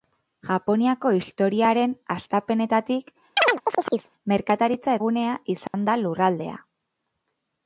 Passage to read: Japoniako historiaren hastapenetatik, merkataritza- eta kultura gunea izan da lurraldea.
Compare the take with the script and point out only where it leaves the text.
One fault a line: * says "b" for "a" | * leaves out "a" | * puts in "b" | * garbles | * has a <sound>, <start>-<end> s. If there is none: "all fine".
* has a chirp, 3.4-4.1 s
* leaves out "eta kultura"
* has a dropout, 5.7-5.7 s